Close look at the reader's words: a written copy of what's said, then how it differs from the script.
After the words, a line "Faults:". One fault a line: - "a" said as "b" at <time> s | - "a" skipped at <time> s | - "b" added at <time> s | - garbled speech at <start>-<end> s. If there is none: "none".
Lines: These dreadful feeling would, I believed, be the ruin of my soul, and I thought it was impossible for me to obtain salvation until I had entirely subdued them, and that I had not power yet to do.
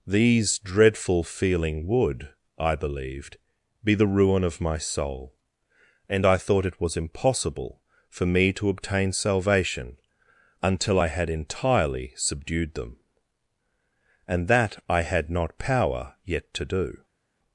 These dreadful feeling would, I believed, be the ruin of my soul, and I thought it was impossible for me to obtain salvation until I had entirely subdued them, and that I had not power yet to do.
Faults:
none